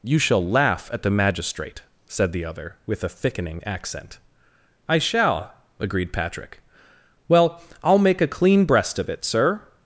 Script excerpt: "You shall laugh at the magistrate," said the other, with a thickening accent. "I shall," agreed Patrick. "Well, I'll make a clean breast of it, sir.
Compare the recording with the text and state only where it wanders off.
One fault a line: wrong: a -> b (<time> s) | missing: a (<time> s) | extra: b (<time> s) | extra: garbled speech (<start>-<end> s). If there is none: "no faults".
no faults